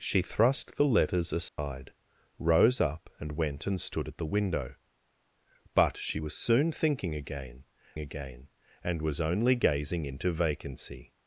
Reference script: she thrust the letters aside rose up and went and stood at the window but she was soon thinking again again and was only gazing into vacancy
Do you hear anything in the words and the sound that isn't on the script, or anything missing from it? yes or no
yes